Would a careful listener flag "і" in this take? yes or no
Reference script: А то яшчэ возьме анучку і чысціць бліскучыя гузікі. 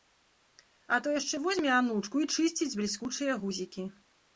no